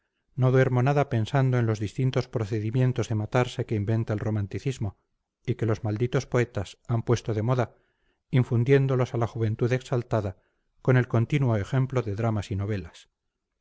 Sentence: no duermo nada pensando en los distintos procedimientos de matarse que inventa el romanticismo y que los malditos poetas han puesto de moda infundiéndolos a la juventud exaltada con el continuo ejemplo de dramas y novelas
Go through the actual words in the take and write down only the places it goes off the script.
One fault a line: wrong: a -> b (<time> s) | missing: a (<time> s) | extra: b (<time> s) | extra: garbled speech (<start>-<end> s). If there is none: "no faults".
no faults